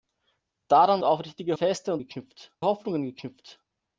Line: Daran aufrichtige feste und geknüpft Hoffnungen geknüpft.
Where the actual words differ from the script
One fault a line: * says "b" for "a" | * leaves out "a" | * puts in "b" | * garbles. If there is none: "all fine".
all fine